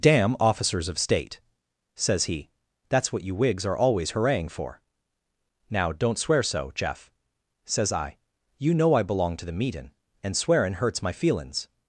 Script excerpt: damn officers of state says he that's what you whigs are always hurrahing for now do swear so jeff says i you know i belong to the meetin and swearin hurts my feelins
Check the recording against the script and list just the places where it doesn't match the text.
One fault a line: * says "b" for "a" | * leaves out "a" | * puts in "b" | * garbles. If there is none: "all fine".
* says "don't" for "do"